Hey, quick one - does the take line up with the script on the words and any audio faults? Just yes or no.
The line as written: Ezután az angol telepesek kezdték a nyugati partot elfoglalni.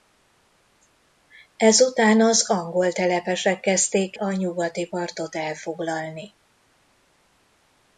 yes